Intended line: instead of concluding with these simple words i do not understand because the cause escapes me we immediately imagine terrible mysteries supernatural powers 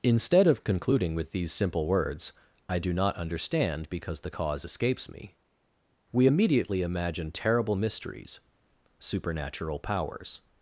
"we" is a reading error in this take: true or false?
false